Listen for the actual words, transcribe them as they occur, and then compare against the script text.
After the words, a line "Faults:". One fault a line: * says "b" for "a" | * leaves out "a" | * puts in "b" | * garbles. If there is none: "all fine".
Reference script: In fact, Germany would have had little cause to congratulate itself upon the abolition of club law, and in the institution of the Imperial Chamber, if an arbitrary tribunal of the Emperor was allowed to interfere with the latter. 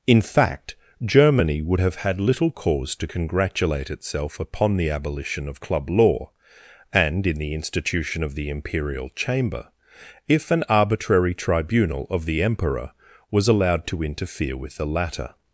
In fact, Germany would have had little cause to congratulate itself upon the abolition of club law, and in the institution of the Imperial Chamber, if an arbitrary tribunal of the Emperor was allowed to interfere with the latter.
Faults:
all fine